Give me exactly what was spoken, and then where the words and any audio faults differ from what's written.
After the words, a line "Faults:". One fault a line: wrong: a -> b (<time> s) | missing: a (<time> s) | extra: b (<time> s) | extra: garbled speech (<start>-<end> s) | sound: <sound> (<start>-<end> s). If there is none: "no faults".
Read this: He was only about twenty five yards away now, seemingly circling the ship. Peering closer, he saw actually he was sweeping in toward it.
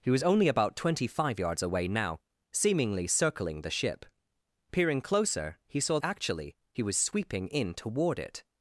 He was only about twenty five yards away now, seemingly circling the ship. Peering closer, he saw actually he was sweeping in toward it.
Faults:
no faults